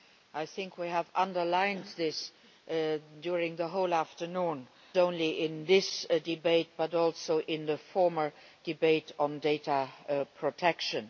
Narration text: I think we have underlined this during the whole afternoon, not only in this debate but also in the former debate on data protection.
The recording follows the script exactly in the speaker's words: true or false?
false